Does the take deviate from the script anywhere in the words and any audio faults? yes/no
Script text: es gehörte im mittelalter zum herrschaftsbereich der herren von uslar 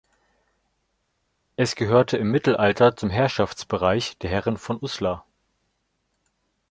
no